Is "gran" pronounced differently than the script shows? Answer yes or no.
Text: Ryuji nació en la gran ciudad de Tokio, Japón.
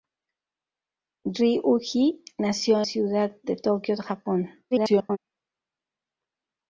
yes